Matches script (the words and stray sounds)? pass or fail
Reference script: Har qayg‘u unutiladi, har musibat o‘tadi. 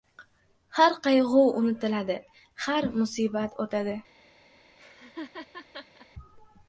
fail